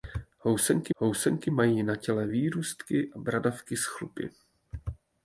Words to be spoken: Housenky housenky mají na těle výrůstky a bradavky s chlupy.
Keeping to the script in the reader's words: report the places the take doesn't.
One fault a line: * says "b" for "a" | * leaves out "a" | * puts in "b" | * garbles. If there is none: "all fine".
all fine